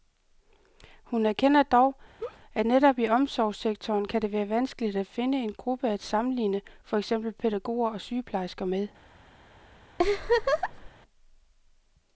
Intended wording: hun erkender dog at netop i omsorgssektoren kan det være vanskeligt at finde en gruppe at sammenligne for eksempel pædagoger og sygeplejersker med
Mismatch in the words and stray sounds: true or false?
true